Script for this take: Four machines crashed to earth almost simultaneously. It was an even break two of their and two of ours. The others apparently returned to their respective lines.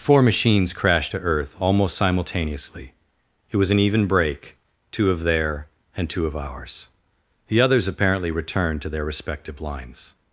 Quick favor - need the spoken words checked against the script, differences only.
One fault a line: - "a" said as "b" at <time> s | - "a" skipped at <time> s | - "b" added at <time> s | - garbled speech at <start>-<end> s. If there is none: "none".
none